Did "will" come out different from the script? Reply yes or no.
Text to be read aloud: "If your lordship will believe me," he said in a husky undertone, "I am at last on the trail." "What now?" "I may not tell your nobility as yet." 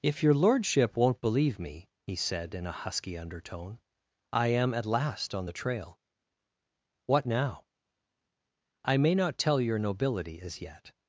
yes